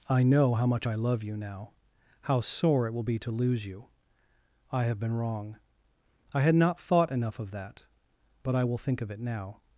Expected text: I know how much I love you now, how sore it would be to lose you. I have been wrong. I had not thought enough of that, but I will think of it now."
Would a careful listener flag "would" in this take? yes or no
yes